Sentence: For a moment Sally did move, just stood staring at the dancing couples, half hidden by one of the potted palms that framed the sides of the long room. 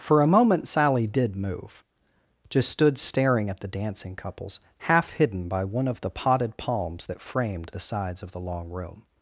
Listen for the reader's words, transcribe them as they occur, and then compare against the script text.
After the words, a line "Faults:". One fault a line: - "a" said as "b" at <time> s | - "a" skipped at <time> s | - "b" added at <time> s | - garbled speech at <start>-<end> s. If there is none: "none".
For a moment Sally did move, just stood staring at the dancing couples, half hidden by one of the potted palms that framed the sides of the long room.
Faults:
none